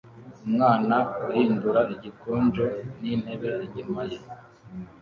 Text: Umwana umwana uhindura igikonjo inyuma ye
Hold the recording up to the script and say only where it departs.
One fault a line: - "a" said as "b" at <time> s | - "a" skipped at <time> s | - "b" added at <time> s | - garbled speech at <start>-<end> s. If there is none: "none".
- "umwana" skipped at 0.9 s
- "n'intebe" added at 3.0 s